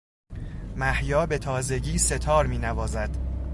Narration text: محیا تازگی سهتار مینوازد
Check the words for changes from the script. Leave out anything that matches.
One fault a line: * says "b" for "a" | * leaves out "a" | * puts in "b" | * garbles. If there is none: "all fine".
* puts in "به"